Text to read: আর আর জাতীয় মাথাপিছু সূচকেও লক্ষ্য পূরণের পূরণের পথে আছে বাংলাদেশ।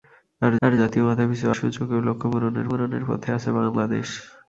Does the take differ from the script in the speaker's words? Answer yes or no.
no